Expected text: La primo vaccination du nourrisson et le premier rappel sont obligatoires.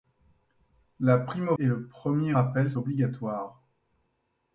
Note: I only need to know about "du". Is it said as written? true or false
false